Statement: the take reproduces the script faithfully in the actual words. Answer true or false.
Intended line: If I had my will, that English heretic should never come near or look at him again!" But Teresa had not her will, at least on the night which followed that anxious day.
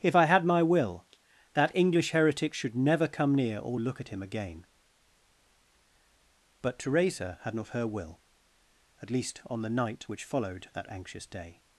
true